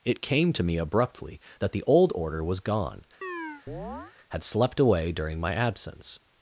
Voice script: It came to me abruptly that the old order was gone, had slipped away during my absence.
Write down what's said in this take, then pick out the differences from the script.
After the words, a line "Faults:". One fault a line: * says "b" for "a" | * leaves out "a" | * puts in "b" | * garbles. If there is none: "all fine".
It came to me abruptly that the old order was gone, had slept away during my absence.
Faults:
* says "slept" for "slipped"